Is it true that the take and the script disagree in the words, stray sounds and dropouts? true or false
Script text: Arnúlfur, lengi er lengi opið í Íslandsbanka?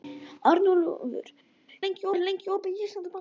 false